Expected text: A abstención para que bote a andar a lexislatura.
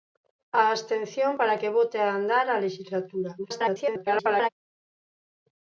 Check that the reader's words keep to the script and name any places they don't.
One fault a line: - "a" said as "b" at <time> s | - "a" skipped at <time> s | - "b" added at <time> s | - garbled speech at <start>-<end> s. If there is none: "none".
- garbled speech at 3.4-4.5 s